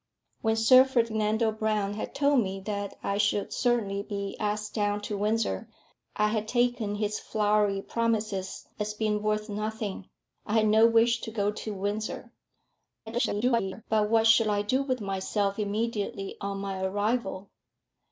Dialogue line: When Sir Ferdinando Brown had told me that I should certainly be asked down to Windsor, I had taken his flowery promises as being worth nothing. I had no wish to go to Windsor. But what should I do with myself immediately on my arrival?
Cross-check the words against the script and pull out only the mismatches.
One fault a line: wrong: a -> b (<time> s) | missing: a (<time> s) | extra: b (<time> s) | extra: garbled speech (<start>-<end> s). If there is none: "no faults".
extra: garbled speech (13.1-13.8 s)